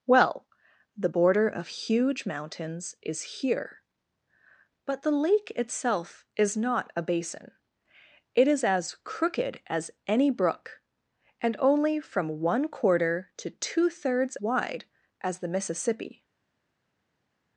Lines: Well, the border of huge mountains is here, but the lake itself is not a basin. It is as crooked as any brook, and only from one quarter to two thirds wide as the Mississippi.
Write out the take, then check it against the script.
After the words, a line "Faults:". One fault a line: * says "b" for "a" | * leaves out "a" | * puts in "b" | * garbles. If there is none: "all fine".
Well, the border of huge mountains is here, but the lake itself is not a basin. It is as crooked as any brook, and only from one quarter to two thirds wide as the Mississippi.
Faults:
all fine